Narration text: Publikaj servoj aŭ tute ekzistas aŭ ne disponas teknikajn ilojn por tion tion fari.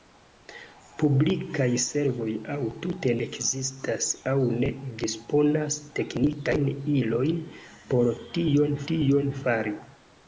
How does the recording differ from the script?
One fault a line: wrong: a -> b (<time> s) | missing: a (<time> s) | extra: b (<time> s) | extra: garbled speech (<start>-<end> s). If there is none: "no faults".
no faults